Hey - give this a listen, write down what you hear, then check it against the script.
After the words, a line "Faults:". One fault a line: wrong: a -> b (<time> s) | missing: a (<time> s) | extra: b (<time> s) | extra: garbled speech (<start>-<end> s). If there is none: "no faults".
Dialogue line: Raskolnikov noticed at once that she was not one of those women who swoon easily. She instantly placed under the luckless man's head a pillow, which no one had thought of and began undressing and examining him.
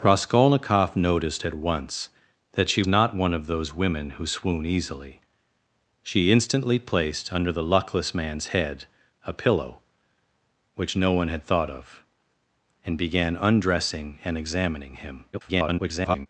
Raskolnikov noticed at once that she not one of those women who swoon easily. She instantly placed under the luckless man's head a pillow, which no one had thought of and began undressing and examining him. [garbled]
Faults:
missing: was (2.8 s)
extra: garbled speech (15.3-16.3 s)